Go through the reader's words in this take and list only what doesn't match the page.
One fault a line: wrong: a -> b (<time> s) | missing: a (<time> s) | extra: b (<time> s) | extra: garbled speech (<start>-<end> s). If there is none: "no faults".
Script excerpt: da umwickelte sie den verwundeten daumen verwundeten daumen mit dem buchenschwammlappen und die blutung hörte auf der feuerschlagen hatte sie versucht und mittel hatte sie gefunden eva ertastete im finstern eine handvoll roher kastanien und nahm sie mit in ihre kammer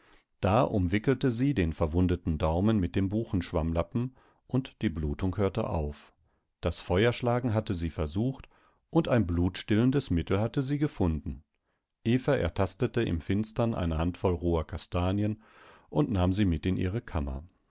missing: verwundeten daumen (2.8 s)
wrong: der -> das (6.6 s)
extra: ein blutstillendes (9.1 s)